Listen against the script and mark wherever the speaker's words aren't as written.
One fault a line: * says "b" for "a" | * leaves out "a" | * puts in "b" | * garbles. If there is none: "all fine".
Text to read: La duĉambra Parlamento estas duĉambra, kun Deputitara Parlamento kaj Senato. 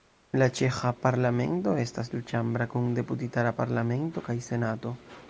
* says "ĉeĥa" for "duĉambra"